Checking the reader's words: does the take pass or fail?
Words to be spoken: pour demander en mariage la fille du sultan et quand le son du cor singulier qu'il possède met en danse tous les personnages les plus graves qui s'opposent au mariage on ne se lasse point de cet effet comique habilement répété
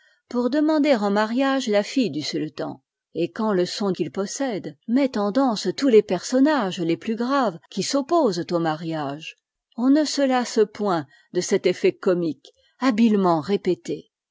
fail